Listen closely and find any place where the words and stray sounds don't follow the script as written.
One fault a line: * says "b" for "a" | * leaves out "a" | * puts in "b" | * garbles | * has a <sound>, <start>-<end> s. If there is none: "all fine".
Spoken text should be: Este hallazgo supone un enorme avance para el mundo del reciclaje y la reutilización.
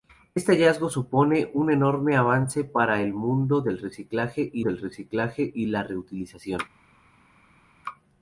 * puts in "del reciclaje y"